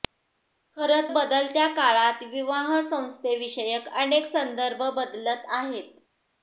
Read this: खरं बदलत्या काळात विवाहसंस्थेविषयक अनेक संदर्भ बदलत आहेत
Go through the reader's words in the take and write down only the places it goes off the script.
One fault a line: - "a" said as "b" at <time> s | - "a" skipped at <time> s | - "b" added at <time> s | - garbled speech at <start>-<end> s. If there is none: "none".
none